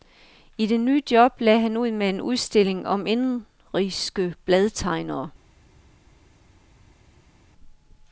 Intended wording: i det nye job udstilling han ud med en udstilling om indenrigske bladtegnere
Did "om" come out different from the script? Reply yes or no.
no